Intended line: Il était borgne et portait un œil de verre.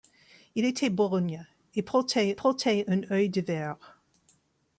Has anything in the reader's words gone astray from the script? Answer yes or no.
yes